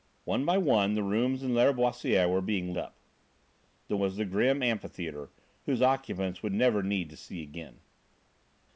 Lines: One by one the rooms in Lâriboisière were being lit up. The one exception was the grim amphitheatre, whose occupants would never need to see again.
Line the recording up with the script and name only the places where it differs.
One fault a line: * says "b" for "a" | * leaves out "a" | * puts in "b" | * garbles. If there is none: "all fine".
* leaves out "lit"
* leaves out "one exception"